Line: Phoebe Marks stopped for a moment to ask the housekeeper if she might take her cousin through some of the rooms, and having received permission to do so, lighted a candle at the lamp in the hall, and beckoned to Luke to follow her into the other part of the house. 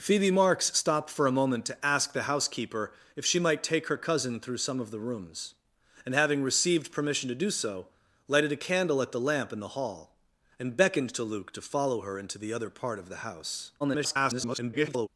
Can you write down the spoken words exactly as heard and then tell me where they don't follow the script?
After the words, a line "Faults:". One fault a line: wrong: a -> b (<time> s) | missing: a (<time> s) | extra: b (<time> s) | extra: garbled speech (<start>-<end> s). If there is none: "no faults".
Phoebe Marks stopped for a moment to ask the housekeeper if she might take her cousin through some of the rooms, and having received permission to do so, lighted a candle at the lamp in the hall, and beckoned to Luke to follow her into the other part of the house. [garbled]
Faults:
extra: garbled speech (13.8-15.1 s)